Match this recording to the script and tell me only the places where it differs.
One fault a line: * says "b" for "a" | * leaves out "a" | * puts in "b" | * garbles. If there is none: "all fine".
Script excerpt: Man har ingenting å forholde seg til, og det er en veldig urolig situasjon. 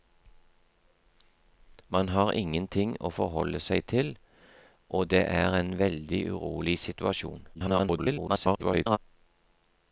* garbles